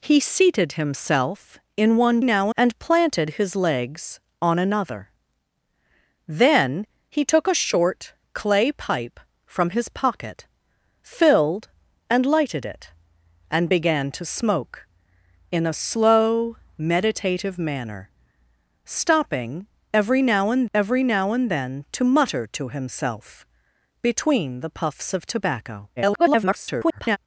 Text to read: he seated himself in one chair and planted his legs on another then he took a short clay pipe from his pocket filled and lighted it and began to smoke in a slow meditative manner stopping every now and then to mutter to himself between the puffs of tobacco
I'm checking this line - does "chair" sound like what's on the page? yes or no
no